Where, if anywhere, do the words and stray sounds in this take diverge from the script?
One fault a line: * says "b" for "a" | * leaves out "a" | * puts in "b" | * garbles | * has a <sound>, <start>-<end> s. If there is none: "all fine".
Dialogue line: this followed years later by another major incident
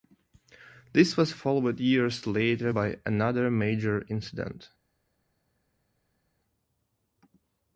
* puts in "was"